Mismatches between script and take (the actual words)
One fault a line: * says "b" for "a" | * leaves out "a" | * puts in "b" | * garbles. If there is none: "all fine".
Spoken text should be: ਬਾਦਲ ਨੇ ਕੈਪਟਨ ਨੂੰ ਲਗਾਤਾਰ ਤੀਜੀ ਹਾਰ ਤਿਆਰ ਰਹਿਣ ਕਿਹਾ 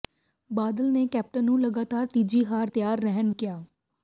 all fine